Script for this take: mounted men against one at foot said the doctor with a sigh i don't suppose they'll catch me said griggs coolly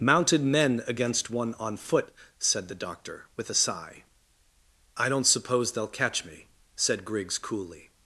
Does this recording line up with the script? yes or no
no